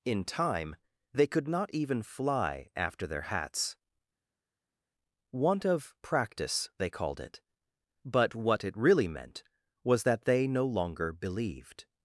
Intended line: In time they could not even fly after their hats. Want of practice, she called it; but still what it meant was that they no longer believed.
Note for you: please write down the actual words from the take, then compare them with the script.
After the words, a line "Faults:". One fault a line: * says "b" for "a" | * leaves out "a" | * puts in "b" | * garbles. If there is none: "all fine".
In time they could not even fly after their hats. Want of practice, they called it; but what it really meant was that they no longer believed.
Faults:
* says "they" for "she"
* leaves out "still"
* puts in "really"